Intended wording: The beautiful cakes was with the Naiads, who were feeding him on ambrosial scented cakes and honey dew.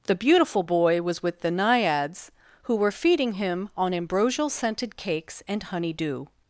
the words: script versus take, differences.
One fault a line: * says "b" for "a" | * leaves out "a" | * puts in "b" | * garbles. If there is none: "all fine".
* says "boy" for "cakes"